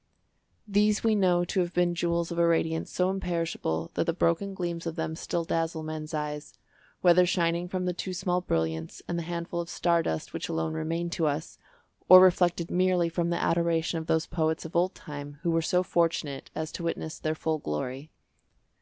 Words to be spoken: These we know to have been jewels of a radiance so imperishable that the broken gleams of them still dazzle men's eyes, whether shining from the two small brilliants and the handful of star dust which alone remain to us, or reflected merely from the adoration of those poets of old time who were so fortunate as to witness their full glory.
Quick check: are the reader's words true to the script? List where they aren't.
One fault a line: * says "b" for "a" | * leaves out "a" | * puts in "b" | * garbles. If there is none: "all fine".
all fine